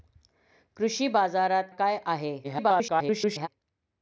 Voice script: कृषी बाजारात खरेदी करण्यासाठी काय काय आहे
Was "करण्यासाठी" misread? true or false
true